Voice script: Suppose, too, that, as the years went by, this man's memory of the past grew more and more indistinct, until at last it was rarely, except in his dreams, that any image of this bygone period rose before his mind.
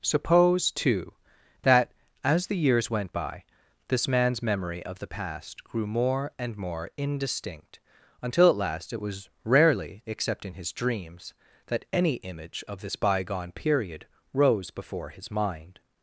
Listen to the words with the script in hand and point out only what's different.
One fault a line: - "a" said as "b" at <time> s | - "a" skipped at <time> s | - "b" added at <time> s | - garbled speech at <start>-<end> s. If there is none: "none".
none